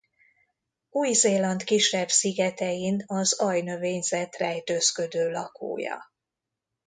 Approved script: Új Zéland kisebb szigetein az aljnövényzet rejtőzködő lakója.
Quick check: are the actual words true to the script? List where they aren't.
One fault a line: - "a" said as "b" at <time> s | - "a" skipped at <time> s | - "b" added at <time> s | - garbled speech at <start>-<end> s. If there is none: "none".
none